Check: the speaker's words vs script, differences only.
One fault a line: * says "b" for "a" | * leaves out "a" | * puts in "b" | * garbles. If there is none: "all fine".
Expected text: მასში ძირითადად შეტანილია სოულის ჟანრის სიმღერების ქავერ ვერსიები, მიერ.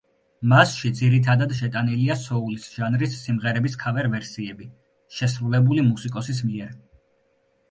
* puts in "შესრულებული მუსიკოსის"